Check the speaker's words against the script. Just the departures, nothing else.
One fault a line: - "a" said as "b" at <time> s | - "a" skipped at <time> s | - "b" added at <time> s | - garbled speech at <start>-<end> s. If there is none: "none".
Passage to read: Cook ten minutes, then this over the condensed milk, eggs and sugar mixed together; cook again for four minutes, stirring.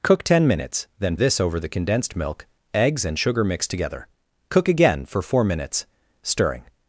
none